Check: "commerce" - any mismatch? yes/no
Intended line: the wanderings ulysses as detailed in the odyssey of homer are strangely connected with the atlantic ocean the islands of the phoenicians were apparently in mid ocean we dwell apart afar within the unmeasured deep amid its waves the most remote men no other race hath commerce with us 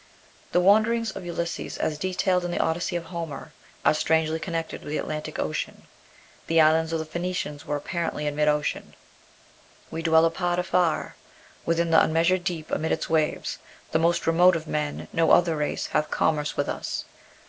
no